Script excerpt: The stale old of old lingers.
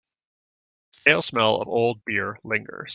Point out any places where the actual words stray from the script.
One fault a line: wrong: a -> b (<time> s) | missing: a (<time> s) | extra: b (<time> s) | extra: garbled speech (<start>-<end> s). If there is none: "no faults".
wrong: old -> smell (1.2 s)
extra: beer (2.0 s)